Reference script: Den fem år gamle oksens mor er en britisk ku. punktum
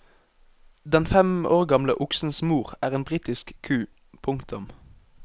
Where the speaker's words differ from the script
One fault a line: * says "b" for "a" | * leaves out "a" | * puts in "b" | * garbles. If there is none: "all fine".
all fine